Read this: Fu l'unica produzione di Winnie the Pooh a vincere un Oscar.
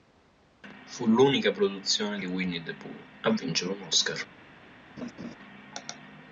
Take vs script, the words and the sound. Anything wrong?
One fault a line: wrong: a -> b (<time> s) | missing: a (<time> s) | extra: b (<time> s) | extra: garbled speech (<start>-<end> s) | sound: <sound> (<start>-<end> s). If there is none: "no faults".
sound: laugh (5.0-5.4 s)